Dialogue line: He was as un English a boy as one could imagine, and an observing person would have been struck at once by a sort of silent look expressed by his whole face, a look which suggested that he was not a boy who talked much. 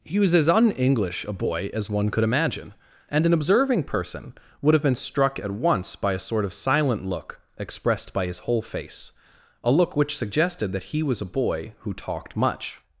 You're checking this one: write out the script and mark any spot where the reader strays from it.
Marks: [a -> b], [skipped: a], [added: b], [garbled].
He was as un English a boy as one could imagine, and an observing person would have been struck at once by a sort of silent look expressed by his whole face, a look which suggested that he was [skipped: not] a boy who talked much.